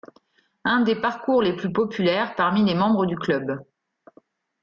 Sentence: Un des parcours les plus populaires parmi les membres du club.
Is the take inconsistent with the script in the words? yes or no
no